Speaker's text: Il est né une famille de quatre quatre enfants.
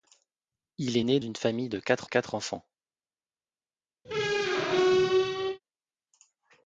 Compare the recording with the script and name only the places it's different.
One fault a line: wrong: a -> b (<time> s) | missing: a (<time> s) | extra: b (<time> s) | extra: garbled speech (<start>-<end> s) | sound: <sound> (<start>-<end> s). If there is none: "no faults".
sound: squeak (4.0-5.6 s)